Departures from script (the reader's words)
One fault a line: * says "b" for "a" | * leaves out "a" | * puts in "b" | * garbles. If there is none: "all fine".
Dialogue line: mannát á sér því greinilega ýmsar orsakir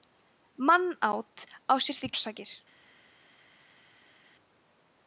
* leaves out "greinilega ýmsar"